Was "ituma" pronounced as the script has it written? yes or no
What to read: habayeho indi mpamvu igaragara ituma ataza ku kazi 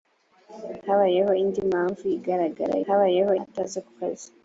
no